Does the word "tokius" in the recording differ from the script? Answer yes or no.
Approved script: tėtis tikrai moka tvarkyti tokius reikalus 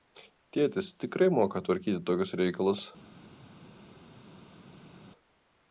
no